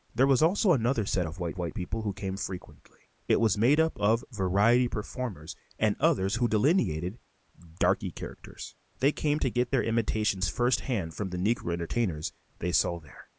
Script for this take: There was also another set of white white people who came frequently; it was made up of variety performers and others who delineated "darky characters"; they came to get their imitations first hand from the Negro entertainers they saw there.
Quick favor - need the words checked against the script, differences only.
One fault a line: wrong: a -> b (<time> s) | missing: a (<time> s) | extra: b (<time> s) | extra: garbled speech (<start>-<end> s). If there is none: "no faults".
no faults